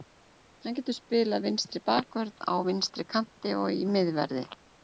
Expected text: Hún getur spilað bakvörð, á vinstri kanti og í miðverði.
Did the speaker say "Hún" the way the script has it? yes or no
no